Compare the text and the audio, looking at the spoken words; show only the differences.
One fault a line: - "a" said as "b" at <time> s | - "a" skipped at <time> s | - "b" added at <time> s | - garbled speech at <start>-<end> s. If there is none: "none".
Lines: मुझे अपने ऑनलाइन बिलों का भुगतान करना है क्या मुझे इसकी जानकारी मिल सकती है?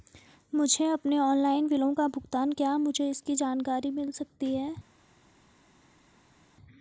- "करना है" skipped at 2.5 s